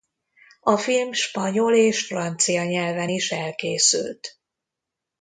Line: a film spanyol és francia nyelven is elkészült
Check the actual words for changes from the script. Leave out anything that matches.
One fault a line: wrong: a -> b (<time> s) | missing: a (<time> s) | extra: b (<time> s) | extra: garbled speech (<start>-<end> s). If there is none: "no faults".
no faults